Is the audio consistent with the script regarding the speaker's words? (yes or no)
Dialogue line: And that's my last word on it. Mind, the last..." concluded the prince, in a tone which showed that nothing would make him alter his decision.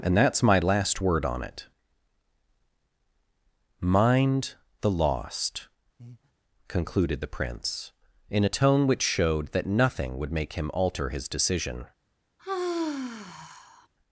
no